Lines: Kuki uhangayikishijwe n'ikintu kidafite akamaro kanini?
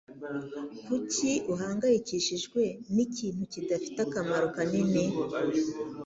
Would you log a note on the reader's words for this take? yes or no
no